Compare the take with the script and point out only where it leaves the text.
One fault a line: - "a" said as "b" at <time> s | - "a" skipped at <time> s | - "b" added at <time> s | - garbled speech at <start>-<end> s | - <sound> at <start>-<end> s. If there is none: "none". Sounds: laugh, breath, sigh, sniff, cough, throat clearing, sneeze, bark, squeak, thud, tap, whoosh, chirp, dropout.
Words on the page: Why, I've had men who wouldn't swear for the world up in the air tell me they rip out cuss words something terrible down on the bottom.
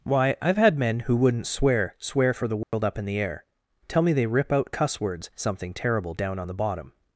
- "swear" added at 2.0 s
- dropout at 2.6-2.7 s